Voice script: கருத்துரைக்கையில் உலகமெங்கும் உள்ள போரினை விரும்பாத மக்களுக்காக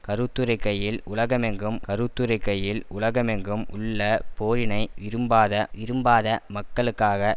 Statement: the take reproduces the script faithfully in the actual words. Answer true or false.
false